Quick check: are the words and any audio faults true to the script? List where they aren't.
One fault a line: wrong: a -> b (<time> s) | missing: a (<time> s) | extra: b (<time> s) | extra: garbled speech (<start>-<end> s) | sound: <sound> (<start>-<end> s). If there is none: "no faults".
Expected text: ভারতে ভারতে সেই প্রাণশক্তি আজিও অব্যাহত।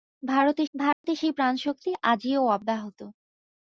sound: dropout (0.9-1.0 s)